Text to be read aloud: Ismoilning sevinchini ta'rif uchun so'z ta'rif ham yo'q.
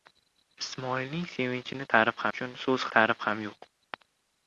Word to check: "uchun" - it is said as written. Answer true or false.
true